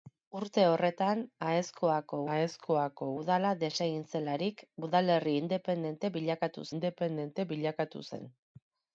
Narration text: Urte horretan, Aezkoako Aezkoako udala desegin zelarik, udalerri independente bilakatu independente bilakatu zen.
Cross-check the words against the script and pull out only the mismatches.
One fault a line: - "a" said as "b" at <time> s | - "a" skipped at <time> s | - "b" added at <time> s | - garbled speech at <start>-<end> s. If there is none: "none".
none